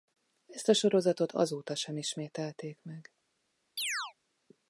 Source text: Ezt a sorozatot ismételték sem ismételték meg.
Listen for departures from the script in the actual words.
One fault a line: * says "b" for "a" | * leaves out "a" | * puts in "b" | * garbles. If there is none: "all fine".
* says "azóta" for "ismételték"